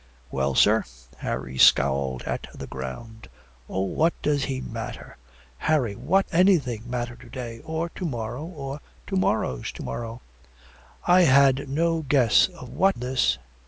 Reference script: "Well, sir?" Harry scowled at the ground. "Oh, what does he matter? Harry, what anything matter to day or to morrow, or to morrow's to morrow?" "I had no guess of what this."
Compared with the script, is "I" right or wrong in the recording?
right